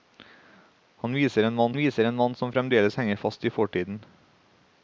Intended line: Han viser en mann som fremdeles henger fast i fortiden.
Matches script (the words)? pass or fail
fail